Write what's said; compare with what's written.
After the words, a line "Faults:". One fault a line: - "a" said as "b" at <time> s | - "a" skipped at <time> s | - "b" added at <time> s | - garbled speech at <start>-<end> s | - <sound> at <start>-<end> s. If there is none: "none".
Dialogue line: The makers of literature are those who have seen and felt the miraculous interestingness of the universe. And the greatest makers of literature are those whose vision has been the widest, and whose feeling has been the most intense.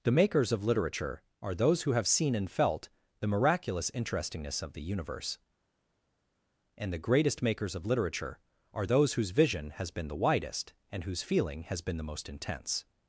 The makers of literature are those who have seen and felt the miraculous interestingness of the universe. And the greatest makers of literature are those whose vision has been the widest, and whose feeling has been the most intense.
Faults:
none